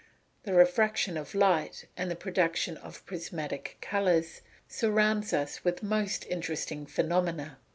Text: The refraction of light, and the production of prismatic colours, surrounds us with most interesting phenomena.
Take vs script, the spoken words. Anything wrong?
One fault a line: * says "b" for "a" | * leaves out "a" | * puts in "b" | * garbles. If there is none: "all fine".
all fine